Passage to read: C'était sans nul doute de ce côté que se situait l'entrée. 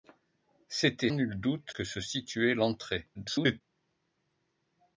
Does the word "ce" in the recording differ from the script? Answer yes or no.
yes